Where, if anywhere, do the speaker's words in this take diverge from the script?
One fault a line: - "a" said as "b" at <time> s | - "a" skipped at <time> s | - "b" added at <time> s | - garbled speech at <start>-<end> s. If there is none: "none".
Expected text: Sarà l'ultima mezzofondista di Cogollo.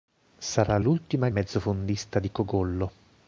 none